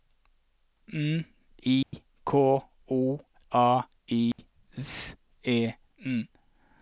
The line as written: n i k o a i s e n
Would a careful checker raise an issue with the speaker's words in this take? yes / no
no